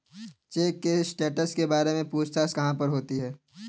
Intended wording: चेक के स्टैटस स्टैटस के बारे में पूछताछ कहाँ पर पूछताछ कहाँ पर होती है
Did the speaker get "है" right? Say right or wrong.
right